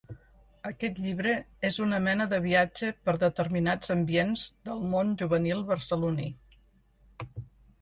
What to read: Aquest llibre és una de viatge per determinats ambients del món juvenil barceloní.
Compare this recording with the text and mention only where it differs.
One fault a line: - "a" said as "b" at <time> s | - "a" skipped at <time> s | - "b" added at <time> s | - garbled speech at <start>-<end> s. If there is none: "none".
- "mena" added at 2.0 s